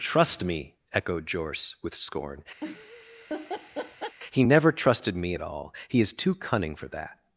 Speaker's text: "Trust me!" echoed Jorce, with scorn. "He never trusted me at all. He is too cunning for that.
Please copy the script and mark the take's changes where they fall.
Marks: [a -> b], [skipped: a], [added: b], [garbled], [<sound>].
"Trust me!" echoed Jorce, with scorn. [laugh] "He never trusted me at all. He is too cunning for that.